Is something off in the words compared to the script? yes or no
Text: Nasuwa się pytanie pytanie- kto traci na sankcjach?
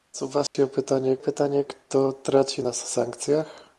no